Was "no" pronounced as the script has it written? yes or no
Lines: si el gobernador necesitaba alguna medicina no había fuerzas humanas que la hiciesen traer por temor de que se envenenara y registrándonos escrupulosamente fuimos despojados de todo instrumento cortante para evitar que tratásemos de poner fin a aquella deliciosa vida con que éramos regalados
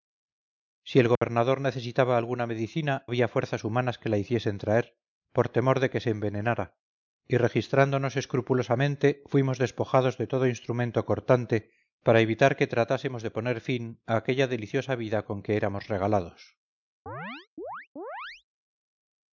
no